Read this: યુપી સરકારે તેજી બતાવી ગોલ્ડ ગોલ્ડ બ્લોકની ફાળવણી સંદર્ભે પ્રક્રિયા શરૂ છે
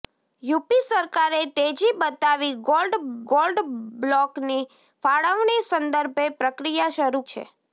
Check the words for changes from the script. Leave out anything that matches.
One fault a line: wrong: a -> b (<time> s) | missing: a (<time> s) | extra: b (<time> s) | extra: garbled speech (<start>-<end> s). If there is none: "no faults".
no faults